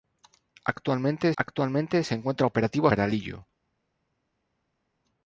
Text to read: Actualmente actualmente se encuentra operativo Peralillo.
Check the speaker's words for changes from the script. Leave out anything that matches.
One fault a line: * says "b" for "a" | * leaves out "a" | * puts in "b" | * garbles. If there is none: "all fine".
all fine